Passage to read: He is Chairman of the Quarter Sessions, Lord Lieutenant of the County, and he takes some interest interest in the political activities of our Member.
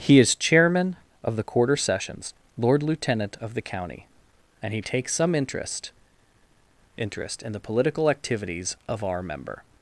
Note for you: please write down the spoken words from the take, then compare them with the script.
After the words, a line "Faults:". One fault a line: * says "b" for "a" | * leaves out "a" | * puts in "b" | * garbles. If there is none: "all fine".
He is Chairman of the Quarter Sessions, Lord Lieutenant of the County, and he takes some interest interest in the political activities of our Member.
Faults:
all fine